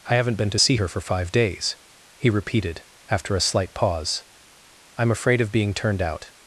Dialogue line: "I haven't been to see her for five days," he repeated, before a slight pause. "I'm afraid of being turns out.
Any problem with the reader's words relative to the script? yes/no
yes